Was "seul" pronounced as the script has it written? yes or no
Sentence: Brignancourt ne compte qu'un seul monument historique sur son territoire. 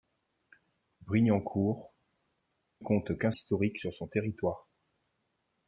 no